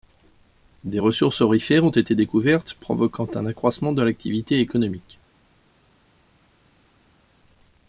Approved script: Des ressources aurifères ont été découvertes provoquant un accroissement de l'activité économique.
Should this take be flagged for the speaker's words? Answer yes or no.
no